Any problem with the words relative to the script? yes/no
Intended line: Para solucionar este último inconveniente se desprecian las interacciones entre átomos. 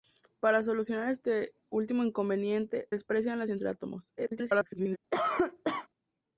yes